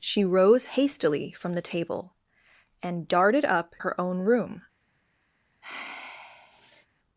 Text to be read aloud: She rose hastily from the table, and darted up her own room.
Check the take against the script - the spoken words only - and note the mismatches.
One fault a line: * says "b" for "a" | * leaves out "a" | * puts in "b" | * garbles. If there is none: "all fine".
all fine